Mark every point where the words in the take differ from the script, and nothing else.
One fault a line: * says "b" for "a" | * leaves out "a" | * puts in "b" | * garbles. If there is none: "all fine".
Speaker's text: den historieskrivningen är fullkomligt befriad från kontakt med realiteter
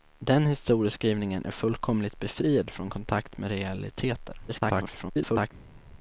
* garbles